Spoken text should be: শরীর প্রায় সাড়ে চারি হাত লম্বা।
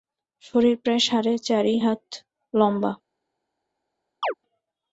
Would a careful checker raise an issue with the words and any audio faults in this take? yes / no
yes